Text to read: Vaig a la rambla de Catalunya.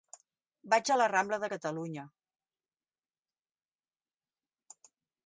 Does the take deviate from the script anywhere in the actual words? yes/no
no